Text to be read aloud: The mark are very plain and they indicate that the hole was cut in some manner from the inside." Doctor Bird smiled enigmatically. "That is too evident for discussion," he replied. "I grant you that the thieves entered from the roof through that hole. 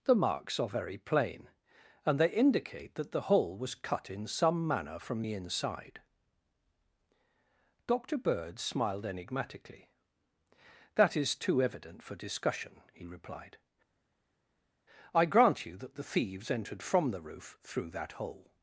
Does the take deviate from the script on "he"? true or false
false